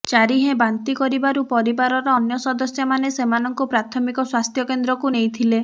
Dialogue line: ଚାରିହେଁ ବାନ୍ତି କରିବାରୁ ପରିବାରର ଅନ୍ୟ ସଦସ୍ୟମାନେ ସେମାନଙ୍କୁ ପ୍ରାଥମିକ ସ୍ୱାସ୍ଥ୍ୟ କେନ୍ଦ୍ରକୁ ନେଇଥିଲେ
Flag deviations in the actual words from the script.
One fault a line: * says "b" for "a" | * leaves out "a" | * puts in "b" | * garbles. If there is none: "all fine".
all fine